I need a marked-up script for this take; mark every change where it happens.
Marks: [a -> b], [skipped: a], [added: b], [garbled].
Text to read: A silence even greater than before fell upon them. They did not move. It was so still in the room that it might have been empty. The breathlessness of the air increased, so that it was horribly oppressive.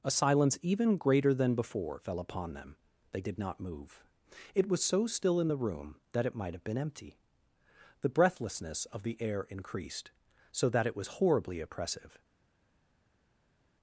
A silence even greater than before fell upon them. They did not move. It was so still in the room that it might have been empty. The breathlessness of the air increased, so that it was horribly oppressive.